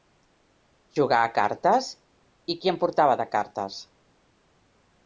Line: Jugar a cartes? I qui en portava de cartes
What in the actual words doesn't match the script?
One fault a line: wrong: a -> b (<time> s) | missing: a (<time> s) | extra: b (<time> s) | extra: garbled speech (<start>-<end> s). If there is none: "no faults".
no faults